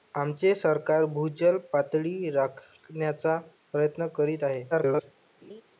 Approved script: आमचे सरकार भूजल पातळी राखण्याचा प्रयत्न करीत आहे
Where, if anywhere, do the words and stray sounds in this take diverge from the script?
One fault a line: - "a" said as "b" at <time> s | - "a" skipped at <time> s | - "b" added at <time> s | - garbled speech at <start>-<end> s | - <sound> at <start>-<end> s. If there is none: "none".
- garbled speech at 4.7-5.1 s
- laugh at 5.4-5.6 s